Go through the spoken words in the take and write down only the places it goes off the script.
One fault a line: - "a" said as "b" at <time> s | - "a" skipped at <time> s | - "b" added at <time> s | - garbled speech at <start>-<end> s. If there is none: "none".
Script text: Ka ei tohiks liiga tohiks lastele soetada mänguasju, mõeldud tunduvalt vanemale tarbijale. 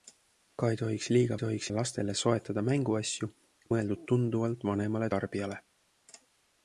none